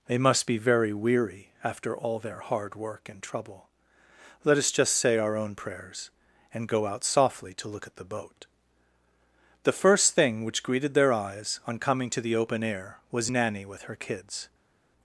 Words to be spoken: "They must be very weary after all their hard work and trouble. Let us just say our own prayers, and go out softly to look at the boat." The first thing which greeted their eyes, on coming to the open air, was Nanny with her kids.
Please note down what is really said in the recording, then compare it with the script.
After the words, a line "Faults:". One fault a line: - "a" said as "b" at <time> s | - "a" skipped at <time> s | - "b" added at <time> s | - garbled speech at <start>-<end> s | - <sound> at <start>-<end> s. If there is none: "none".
"They must be very weary after all their hard work and trouble. Let us just say our own prayers, and go out softly to look at the boat." The first thing which greeted their eyes, on coming to the open air, was Nanny with her kids.
Faults:
none